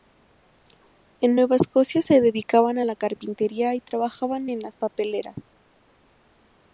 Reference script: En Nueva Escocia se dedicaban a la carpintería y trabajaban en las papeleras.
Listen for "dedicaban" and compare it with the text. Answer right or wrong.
right